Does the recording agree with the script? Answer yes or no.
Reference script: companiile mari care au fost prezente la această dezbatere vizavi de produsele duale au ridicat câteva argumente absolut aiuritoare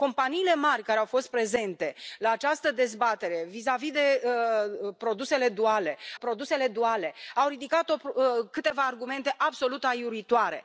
no